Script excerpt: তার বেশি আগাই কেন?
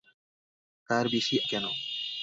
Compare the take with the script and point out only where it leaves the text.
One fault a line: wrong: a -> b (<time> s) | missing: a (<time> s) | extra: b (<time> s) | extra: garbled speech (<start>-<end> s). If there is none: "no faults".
missing: আগাই (1.4 s)